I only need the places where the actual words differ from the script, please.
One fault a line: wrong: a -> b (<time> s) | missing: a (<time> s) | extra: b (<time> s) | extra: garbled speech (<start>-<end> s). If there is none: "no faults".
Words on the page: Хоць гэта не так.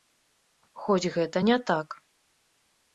no faults